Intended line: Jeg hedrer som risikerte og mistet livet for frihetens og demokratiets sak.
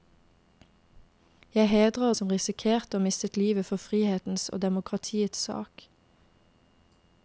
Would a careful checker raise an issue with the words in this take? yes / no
no